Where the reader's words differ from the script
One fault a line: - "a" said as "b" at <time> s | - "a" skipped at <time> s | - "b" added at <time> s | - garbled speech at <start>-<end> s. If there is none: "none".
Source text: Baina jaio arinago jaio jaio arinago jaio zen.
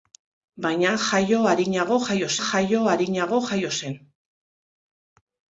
none